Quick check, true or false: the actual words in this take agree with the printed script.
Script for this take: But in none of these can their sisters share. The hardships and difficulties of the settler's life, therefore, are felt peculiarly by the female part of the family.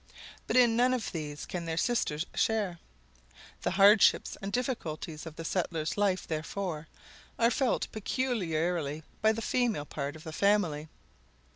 true